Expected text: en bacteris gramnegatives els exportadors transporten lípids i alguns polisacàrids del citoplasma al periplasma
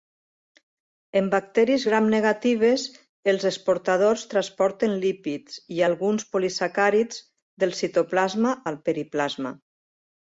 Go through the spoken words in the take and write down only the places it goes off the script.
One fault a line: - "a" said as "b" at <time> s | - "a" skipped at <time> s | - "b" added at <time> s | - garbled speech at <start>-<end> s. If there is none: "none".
none